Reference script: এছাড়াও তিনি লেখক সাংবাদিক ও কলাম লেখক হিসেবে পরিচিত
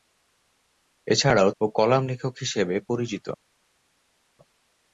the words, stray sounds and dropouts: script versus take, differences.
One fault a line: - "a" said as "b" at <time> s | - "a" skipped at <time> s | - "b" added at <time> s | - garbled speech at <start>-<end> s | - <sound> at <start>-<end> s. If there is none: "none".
- "তিনি লেখক সাংবাদিক" skipped at 1.5 s